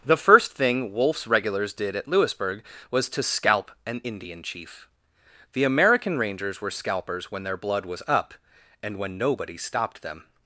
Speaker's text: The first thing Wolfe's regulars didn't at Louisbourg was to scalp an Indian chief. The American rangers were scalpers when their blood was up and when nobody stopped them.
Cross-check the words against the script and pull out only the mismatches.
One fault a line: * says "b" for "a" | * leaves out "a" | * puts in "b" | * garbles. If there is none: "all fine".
* says "did" for "didn't"